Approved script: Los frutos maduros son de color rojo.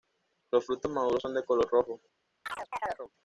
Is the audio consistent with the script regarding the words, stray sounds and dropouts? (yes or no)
no